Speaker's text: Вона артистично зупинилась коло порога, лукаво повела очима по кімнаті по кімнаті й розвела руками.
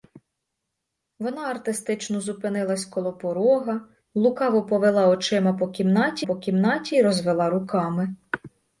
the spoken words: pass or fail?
pass